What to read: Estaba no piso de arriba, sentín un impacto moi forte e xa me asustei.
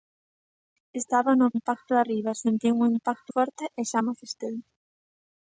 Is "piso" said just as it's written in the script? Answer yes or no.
no